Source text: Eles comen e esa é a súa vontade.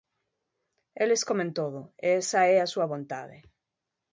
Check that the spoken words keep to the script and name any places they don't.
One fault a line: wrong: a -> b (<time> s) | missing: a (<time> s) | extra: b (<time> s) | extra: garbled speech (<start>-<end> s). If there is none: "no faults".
extra: todo (1.6 s)